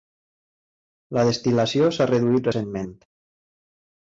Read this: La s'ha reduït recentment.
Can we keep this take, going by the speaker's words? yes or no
no